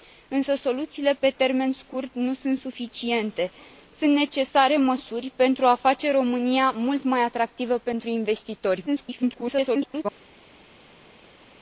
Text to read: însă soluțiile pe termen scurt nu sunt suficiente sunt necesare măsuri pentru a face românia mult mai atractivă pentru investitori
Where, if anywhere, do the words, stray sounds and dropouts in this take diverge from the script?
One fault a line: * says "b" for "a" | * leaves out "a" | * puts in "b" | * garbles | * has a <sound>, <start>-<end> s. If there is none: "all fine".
* garbles